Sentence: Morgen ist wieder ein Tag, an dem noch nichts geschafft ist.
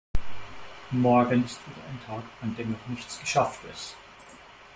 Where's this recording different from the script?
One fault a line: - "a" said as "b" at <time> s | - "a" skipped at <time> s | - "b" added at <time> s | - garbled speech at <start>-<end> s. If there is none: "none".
none